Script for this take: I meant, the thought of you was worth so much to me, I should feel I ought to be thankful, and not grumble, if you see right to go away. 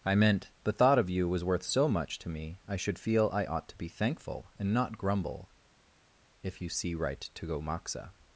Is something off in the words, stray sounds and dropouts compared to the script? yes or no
yes